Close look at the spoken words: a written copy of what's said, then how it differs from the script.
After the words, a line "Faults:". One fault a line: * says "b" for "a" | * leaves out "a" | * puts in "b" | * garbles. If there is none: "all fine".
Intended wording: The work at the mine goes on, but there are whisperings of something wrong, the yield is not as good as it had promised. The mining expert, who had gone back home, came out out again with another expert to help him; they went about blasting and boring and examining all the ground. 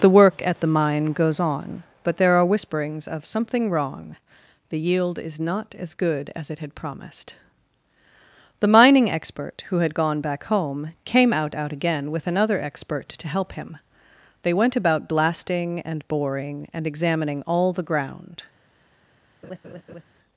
The work at the mine goes on, but there are whisperings of something wrong, the yield is not as good as it had promised. The mining expert, who had gone back home, came out out again with another expert to help him; they went about blasting and boring and examining all the ground.
Faults:
all fine